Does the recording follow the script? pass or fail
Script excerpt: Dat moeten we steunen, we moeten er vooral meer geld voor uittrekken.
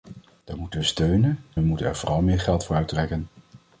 pass